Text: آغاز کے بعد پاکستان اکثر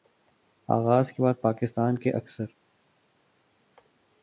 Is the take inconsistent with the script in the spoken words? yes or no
yes